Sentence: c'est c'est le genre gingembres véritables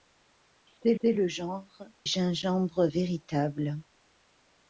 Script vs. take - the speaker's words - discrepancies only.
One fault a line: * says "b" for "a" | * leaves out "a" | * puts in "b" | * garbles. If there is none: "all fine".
all fine